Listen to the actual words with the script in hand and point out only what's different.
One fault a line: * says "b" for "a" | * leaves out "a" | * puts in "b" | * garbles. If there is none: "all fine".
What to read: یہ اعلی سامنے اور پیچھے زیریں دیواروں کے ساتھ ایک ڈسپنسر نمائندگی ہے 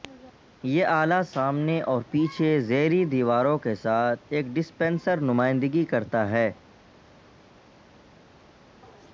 * puts in "کرتا"